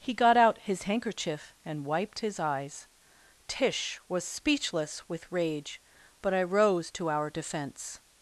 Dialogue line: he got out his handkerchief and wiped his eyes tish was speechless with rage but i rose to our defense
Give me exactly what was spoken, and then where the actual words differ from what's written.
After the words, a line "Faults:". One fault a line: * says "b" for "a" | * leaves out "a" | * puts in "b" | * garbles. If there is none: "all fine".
he got out his handkerchief and wiped his eyes tish was speechless with rage but i rose to our defense
Faults:
all fine